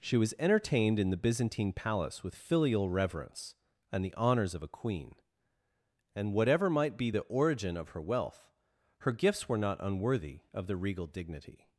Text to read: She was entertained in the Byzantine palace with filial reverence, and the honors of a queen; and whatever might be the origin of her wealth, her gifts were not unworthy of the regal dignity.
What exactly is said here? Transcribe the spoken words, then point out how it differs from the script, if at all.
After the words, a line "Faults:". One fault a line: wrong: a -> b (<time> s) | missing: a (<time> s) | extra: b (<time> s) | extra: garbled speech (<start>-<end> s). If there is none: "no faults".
She was entertained in the Byzantine palace with filial reverence, and the honors of a queen; and whatever might be the origin of her wealth, her gifts were not unworthy of the regal dignity.
Faults:
no faults